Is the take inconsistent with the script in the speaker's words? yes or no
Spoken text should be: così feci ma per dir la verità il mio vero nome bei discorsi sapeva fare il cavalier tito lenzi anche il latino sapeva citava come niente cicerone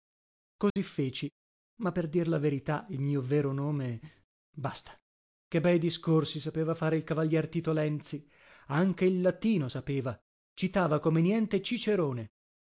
yes